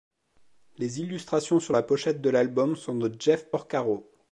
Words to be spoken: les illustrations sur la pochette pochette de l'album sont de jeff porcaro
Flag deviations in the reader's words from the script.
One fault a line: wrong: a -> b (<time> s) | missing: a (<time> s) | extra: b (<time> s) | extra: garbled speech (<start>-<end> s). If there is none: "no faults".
missing: pochette (2.2 s)